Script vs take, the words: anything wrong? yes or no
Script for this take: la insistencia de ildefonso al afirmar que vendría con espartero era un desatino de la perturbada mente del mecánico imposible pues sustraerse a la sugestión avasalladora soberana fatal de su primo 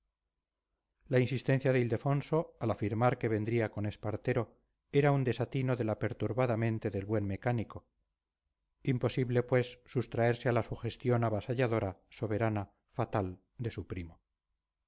yes